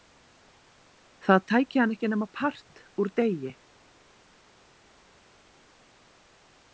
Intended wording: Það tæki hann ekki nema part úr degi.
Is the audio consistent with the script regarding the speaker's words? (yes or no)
yes